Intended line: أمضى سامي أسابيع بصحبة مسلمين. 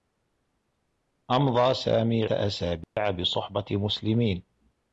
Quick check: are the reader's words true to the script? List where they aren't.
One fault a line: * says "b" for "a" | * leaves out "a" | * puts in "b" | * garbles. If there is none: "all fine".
all fine